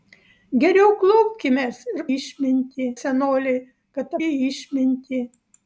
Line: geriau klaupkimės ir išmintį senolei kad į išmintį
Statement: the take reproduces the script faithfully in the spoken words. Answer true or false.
true